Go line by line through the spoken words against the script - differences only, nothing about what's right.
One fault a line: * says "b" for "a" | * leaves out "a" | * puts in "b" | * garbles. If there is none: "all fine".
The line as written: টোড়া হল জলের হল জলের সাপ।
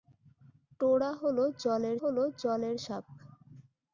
all fine